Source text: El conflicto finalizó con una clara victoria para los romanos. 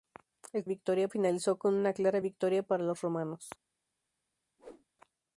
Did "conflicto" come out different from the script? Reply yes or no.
yes